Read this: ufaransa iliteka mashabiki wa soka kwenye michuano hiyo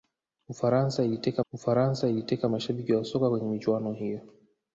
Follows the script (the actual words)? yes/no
no